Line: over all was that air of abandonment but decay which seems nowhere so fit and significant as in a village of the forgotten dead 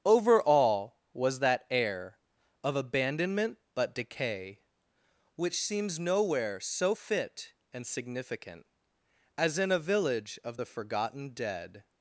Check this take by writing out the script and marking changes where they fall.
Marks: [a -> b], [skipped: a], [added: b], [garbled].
over all was that air of abandonment but decay which seems nowhere so fit and significant as in a village of the forgotten dead